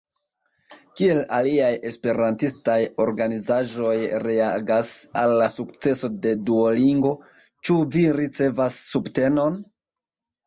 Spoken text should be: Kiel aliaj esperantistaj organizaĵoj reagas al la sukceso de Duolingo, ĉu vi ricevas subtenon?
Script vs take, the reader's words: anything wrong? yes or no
no